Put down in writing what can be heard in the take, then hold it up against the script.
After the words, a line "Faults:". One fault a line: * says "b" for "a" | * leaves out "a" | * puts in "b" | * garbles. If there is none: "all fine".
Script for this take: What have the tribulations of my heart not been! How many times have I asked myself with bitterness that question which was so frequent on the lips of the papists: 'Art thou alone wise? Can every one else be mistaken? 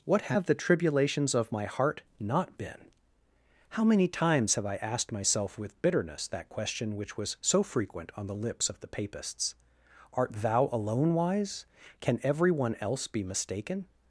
What have the tribulations of my heart not been! How many times have I asked myself with bitterness that question which was so frequent on the lips of the papists: 'Art thou alone wise? Can every one else be mistaken?
Faults:
all fine